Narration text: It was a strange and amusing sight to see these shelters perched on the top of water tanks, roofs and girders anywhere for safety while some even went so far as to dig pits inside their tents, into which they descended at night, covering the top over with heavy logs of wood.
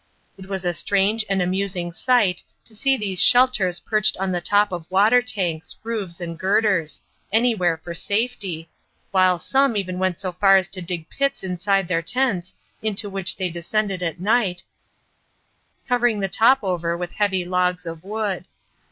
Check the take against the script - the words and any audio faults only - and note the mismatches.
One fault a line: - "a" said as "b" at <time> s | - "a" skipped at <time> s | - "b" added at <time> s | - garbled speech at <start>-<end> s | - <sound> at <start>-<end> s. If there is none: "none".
none